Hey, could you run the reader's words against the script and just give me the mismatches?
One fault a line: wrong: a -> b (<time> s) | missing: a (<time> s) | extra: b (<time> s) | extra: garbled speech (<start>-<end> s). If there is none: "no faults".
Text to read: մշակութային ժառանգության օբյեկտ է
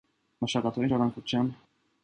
missing: օբյեկտ (1.5 s)